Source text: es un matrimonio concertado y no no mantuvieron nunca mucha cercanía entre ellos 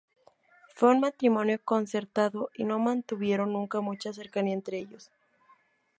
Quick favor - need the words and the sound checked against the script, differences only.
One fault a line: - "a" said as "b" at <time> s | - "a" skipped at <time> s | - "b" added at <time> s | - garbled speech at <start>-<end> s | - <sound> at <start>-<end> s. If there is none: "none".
- "es" said as "fue" at 0.7 s
- "no" skipped at 2.8 s